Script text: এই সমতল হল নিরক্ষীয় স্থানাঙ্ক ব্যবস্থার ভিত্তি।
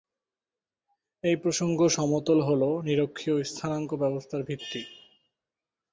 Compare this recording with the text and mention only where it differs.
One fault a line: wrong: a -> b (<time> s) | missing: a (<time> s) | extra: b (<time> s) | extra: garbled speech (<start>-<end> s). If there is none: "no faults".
extra: প্রসঙ্গ (1.4 s)